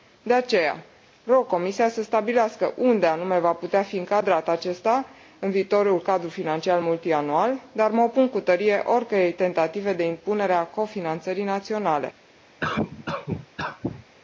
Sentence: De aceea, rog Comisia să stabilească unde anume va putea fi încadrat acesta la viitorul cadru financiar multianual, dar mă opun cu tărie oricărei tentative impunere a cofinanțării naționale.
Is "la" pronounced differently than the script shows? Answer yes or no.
yes